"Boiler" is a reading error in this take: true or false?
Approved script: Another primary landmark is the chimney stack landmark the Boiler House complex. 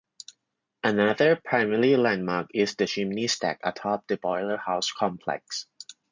false